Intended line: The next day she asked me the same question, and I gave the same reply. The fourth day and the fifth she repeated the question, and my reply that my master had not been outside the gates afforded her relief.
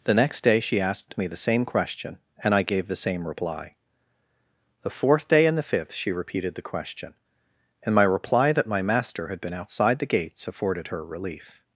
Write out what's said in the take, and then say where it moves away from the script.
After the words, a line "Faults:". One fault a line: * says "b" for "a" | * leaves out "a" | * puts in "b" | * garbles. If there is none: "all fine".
The next day she asked me the same question, and I gave the same reply. The fourth day and the fifth she repeated the question, and my reply that my master had been outside the gates afforded her relief.
Faults:
* leaves out "not"